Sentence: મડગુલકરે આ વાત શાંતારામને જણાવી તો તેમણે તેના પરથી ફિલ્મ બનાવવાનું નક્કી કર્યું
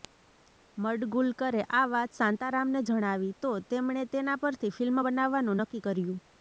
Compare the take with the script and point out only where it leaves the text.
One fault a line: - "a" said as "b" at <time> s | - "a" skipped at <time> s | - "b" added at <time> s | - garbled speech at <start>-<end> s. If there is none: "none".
none